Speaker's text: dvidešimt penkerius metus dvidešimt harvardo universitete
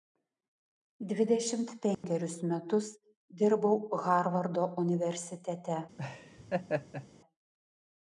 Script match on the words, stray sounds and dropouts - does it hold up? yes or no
no